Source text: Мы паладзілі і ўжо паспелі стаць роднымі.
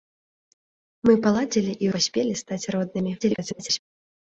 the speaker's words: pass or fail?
fail